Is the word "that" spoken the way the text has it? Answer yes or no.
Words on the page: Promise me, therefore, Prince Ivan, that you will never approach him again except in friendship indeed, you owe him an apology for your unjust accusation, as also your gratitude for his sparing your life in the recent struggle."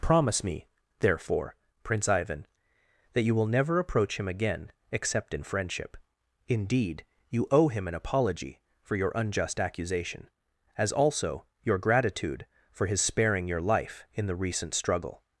yes